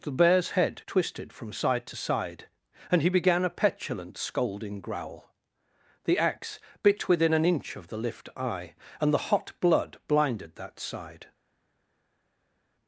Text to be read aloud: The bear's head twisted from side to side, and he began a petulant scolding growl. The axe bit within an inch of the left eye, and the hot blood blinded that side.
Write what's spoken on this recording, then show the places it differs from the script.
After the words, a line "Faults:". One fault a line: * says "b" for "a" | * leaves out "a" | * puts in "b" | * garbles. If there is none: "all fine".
The bear's head twisted from side to side, and he began a petulant scolding growl. The axe bit within an inch of the lift eye, and the hot blood blinded that side.
Faults:
* says "lift" for "left"